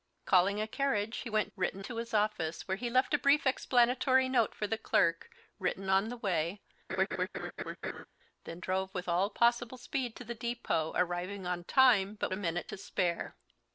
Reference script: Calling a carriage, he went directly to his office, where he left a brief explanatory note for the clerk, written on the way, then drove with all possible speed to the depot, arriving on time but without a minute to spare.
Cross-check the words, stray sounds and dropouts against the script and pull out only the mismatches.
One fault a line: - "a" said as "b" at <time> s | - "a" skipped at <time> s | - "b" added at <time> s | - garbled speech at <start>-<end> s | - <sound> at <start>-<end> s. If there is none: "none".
- "directly" said as "written" at 1.6 s
- laugh at 6.9-8.1 s
- "without" skipped at 12.3 s